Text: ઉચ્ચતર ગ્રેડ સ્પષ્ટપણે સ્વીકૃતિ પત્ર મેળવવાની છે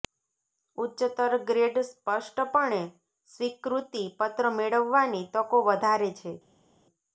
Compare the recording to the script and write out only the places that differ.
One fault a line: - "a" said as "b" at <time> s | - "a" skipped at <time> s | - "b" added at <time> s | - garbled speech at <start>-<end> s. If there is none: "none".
- "તકો વધારે" added at 5.4 s